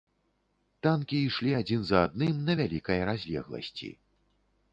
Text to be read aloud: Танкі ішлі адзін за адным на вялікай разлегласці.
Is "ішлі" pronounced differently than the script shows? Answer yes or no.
no